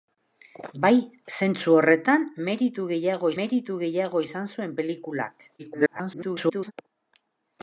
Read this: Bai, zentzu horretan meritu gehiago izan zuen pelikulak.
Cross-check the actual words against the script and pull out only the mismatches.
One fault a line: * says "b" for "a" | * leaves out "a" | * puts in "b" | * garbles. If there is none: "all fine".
* puts in "meritu gehiago"
* garbles